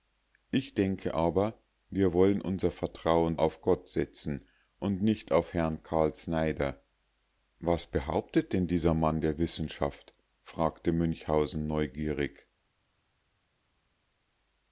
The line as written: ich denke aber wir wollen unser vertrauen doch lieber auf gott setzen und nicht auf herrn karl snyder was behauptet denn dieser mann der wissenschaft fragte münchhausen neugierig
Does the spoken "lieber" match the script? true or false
false